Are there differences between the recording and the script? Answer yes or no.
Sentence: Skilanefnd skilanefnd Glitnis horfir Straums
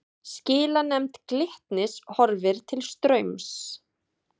yes